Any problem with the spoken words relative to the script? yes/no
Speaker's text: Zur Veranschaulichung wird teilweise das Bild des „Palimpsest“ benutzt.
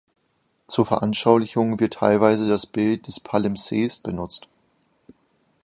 no